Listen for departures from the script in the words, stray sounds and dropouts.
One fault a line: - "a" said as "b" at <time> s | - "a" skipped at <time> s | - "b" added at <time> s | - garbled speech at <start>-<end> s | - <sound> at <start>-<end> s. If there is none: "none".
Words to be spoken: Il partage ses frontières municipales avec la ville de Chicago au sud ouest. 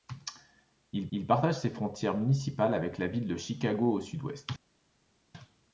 - "il" added at 1.1 s